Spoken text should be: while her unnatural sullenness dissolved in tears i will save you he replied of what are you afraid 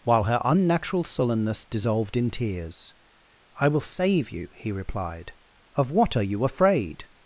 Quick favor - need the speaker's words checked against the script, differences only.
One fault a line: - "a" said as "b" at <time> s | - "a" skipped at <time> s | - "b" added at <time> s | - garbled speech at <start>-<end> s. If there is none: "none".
none